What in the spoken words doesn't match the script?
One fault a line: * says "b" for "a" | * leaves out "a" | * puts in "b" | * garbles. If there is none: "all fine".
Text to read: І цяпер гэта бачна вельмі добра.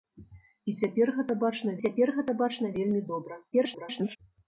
* puts in "цяпер гэта бачна"
* garbles